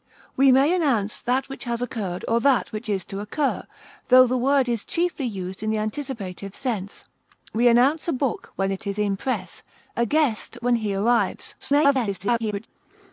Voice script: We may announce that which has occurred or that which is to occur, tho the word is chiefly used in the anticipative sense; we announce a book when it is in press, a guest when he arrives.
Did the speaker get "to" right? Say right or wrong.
right